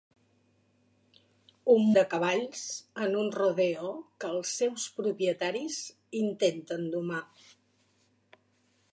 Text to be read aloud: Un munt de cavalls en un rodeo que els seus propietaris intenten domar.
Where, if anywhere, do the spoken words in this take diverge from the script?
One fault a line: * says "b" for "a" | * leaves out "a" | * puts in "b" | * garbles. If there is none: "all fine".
* leaves out "munt"